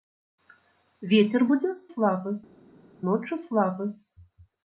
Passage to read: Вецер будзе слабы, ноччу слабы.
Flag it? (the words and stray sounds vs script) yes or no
no